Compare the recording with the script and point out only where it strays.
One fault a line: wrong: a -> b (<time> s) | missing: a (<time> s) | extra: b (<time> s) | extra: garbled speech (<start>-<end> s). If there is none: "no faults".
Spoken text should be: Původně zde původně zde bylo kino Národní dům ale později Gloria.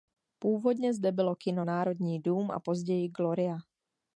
missing: původně zde (1.1 s)
wrong: ale -> a (2.5 s)